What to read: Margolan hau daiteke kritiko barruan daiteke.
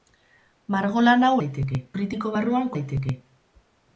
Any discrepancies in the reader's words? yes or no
no